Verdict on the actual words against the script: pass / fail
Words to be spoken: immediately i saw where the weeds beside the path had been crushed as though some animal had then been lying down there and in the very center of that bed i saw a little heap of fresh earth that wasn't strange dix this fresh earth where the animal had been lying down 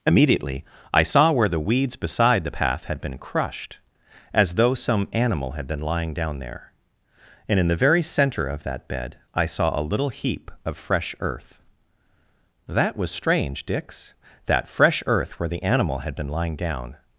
fail